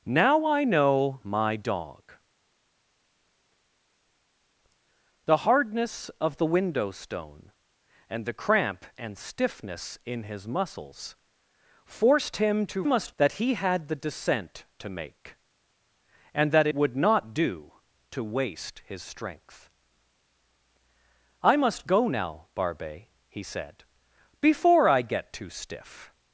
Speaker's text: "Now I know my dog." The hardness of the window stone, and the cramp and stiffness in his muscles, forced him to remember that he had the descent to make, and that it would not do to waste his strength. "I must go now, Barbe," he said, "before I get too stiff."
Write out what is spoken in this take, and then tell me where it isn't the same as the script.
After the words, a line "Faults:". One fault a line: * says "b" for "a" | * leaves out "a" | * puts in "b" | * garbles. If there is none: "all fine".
"Now I know my dog." The hardness of the window stone, and the cramp and stiffness in his muscles, forced him to must that he had the descent to make, and that would not do to waste his strength. "I must go now, Barbe," he said, "before I get too stiff."
Faults:
* says "must" for "remember"
* leaves out "it"